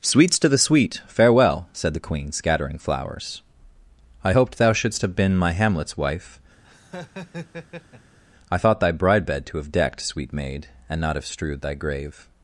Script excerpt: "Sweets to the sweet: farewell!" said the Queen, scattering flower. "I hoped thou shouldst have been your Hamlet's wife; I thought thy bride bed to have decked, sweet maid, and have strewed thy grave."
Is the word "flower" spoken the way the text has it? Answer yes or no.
no